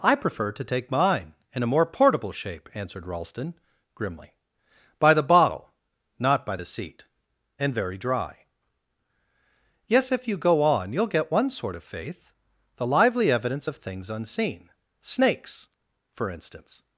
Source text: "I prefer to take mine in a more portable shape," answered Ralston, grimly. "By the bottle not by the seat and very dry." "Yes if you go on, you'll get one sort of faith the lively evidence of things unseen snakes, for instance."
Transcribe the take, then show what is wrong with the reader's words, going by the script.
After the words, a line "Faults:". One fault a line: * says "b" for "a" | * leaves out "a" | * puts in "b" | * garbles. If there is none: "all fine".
"I prefer to take mine in a more portable shape," answered Ralston, grimly. "By the bottle not by the seat and very dry." "Yes if you go on, you'll get one sort of faith the lively evidence of things unseen snakes, for instance."
Faults:
all fine